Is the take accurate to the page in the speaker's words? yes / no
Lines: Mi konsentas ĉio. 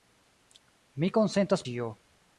yes